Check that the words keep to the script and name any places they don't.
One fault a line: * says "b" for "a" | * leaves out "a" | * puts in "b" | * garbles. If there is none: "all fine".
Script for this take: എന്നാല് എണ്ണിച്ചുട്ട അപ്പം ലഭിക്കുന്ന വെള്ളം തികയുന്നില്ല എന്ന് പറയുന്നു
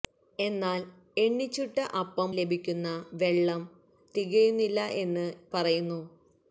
all fine